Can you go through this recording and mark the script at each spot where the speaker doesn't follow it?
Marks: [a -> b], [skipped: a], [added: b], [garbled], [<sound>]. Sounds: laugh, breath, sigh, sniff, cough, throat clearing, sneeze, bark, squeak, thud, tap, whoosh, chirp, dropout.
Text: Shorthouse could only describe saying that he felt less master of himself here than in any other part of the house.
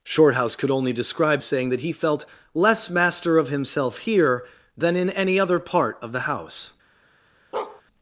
Shorthouse could only describe saying that he felt less master of himself here than in any other part of the house. [bark]